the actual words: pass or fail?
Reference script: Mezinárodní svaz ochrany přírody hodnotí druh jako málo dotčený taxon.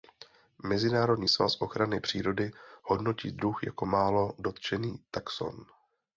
pass